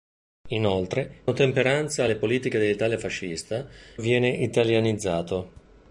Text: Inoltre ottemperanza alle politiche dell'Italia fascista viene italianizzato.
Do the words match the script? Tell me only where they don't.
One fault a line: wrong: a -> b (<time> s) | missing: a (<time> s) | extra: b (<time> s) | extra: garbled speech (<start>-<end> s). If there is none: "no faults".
no faults